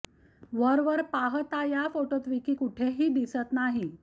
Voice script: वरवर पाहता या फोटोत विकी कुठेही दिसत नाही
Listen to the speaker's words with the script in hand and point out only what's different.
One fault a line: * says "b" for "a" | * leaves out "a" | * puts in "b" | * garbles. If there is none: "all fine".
all fine